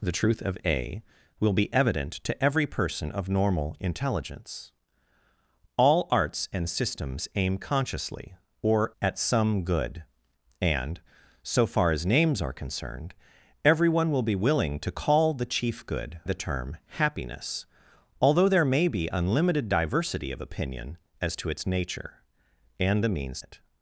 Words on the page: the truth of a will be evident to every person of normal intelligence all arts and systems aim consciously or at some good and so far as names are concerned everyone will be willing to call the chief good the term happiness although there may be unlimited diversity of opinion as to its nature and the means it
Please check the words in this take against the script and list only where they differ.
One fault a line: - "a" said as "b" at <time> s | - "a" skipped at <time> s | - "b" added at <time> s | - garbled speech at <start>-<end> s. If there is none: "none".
none